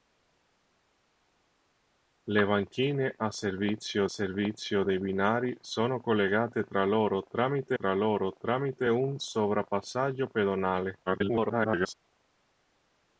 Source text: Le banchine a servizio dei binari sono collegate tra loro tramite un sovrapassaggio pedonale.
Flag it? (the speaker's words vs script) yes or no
yes